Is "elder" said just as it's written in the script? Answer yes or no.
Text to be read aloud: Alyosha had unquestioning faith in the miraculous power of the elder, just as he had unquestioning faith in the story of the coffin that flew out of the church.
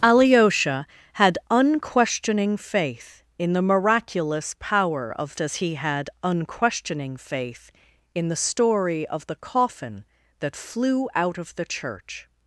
no